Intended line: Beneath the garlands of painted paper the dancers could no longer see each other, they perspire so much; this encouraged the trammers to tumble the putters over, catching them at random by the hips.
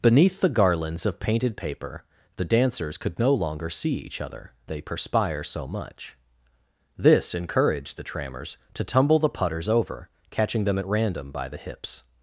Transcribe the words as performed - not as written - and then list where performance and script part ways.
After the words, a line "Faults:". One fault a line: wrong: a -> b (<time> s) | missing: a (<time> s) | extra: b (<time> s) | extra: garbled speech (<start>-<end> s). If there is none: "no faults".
Beneath the garlands of painted paper the dancers could no longer see each other, they perspire so much; this encouraged the trammers to tumble the putters over, catching them at random by the hips.
Faults:
no faults